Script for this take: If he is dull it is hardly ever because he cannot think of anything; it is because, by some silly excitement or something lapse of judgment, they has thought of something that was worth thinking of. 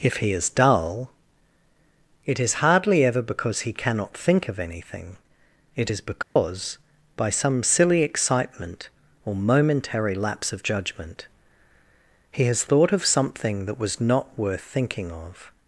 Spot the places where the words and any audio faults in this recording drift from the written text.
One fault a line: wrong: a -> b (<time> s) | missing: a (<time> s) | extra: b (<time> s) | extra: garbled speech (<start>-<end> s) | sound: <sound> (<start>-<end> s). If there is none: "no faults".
sound: dropout (6.2-6.4 s)
wrong: something -> momentary (9.3 s)
wrong: they -> he (12.3 s)
extra: not (14.0 s)